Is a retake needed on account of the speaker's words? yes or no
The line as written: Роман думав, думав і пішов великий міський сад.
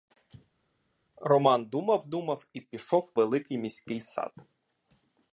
no